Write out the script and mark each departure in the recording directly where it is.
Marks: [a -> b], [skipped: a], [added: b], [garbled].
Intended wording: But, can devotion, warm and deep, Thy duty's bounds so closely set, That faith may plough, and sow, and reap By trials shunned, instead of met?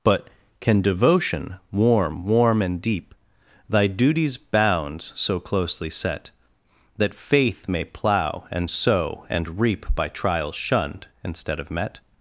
But, can devotion, warm [added: warm] and deep, Thy duty's bounds so closely set, That faith may plough, and sow, and reap By trials shunned, instead of met?